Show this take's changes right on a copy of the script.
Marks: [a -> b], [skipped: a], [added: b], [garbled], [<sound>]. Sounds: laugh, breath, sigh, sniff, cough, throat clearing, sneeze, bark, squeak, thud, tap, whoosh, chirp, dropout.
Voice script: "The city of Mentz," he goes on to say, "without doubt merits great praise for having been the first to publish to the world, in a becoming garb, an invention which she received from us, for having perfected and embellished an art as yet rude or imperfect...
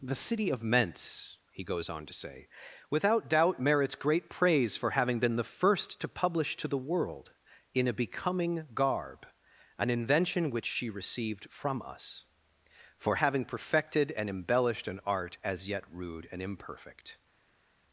"The city of Mentz," he goes on to say, "without doubt merits great praise for having been the first to publish to the world, in a becoming garb, an invention which she received from us, for having perfected and embellished an art as yet rude [or -> and] imperfect...